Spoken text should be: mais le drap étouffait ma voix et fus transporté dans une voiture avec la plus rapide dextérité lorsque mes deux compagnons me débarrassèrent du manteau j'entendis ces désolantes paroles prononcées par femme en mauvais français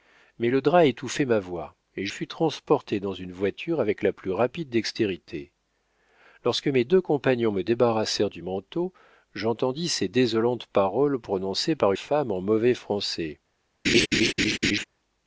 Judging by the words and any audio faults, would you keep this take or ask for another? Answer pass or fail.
fail